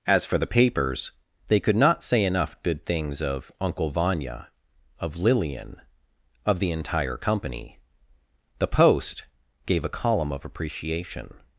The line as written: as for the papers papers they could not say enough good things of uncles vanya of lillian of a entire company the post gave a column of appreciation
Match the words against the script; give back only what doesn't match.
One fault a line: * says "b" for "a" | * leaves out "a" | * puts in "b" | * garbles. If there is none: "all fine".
* leaves out "papers"
* says "uncle" for "uncles"
* says "the" for "a"